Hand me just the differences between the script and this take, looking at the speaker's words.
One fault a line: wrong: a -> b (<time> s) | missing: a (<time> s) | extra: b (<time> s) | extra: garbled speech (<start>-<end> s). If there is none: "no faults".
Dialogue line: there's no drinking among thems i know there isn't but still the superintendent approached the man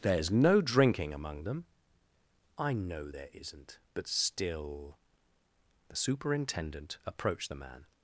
wrong: thems -> them (1.4 s)